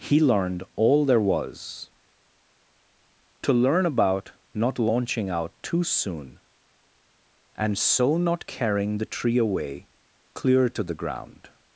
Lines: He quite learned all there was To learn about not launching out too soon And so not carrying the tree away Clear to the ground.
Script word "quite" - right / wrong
wrong